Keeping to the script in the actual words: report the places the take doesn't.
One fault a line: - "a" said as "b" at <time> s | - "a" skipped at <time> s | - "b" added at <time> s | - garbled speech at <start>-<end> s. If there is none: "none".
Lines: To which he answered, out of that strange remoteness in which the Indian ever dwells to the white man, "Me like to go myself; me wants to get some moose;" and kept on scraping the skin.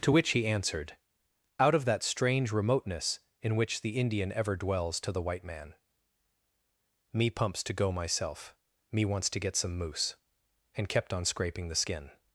- "like" said as "pumps" at 7.3 s